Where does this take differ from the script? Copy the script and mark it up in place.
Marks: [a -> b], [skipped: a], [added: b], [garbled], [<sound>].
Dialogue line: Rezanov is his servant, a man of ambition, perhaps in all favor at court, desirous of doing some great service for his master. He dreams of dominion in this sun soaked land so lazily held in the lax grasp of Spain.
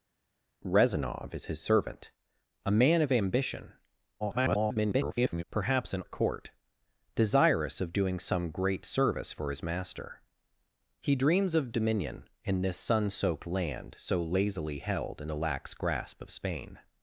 Rezanov is his servant, a man of ambition, [garbled] perhaps in [skipped: all favor] at court, desirous of doing some great service for his master. He dreams of dominion in this sun soaked land so lazily held in the lax grasp of Spain.